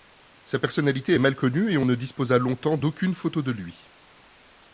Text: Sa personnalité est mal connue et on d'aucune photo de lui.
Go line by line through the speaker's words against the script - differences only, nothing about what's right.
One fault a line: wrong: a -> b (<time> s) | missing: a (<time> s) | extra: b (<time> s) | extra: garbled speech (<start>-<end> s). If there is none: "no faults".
extra: ne disposa longtemps (1.8 s)